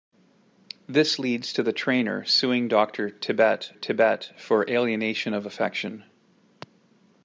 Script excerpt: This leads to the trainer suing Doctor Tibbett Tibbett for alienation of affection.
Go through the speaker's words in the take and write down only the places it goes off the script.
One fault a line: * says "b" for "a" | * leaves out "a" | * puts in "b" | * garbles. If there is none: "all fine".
all fine